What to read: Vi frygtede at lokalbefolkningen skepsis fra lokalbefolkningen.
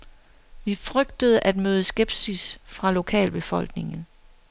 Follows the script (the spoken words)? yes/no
no